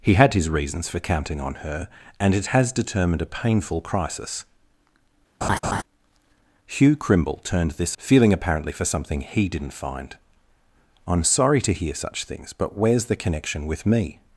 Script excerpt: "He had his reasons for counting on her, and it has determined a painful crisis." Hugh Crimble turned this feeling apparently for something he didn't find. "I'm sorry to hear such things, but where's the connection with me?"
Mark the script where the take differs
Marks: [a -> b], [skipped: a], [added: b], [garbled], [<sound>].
"He had his reasons for counting on her, and it has determined a painful crisis." [laugh] Hugh Crimble turned this feeling apparently for something he didn't find. "I'm sorry to hear such things, but where's the connection with me?"